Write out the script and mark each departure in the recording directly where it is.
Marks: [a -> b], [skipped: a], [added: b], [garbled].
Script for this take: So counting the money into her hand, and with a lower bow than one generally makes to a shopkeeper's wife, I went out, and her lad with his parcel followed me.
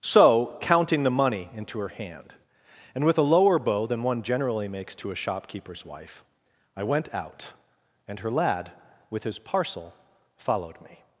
So counting the money into her hand, and with a lower bow than one generally makes to a shopkeeper's wife, I went out, and her lad with his parcel followed me.